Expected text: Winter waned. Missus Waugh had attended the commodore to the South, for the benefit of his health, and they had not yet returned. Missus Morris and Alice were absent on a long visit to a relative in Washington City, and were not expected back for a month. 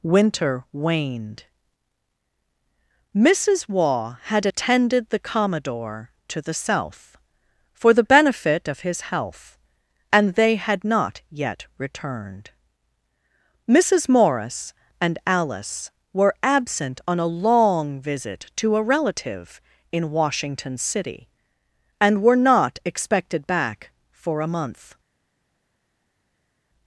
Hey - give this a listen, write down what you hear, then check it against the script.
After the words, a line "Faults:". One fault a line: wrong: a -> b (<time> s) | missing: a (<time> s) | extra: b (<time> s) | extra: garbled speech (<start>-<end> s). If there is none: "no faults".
Winter waned. Missus Waugh had attended the commodore to the South, for the benefit of his health, and they had not yet returned. Missus Morris and Alice were absent on a long visit to a relative in Washington City, and were not expected back for a month.
Faults:
no faults